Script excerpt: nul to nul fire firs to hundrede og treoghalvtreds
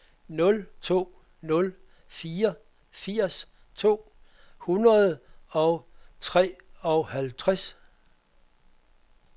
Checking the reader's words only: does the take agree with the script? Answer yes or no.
yes